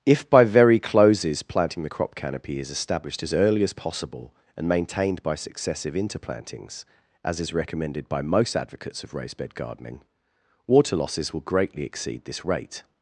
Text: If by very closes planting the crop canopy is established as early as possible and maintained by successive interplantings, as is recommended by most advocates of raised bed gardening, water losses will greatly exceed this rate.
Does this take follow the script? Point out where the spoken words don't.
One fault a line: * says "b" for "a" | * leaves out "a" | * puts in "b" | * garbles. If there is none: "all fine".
all fine